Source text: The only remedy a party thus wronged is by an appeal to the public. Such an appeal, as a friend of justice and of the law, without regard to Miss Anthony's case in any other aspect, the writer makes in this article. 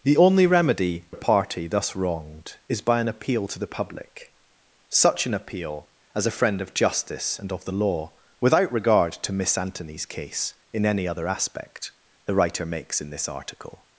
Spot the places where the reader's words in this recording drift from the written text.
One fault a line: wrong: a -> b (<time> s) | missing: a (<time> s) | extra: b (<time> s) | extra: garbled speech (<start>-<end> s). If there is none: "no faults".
no faults